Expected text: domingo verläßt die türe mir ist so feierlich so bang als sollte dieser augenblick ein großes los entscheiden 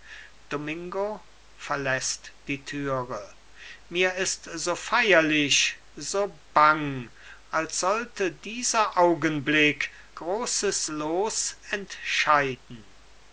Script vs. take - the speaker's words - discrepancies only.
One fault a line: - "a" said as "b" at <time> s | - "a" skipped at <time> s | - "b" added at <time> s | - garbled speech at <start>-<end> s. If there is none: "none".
- "ein" skipped at 9.9 s